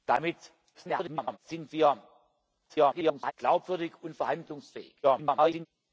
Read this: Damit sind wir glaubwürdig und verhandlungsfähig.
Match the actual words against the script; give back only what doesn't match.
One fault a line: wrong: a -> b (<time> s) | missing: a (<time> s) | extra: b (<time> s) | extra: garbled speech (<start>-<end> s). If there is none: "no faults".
extra: garbled speech (0.7-1.4 s)
extra: garbled speech (2.7-3.3 s)
extra: garbled speech (5.0-5.7 s)